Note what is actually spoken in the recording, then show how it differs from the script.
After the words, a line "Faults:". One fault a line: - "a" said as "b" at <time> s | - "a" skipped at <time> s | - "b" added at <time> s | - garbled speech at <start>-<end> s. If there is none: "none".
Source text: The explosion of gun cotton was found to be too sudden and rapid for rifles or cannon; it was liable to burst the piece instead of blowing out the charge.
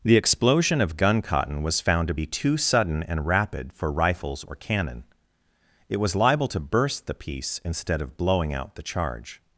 The explosion of gun cotton was found to be too sudden and rapid for rifles or cannon; it was liable to burst the piece instead of blowing out the charge.
Faults:
none